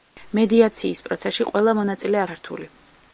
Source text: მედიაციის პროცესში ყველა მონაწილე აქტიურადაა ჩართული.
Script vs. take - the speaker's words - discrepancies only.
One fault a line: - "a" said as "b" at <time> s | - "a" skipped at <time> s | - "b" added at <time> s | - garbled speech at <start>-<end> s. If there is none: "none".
- "აქტიურადაა" skipped at 2.2 s